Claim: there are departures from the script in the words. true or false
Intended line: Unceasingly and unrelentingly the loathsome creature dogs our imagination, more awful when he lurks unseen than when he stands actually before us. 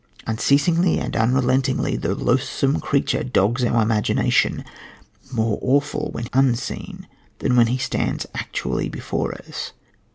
true